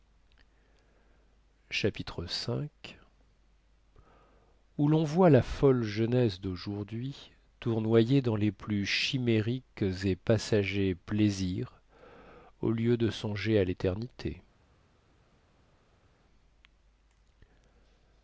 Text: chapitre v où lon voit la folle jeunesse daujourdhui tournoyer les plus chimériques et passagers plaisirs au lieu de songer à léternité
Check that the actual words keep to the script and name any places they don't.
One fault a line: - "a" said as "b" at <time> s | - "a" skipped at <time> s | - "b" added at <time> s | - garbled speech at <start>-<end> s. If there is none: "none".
- "dans" added at 8.2 s